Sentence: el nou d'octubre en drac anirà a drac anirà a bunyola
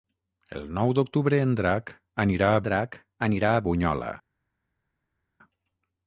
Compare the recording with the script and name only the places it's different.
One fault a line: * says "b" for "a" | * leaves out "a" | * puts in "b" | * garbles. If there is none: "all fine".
all fine